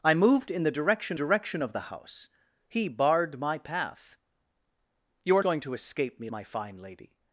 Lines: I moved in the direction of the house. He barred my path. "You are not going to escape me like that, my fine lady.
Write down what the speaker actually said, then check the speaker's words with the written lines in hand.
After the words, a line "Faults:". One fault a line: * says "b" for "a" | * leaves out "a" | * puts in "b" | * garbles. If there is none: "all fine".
I moved in the direction direction of the house. He barred my path. "You are going to escape me my fine lady.
Faults:
* puts in "direction"
* leaves out "not"
* leaves out "like that"